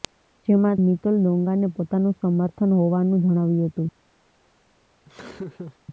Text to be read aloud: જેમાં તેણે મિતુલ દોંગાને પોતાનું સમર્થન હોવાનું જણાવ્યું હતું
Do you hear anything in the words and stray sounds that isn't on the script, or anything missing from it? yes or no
yes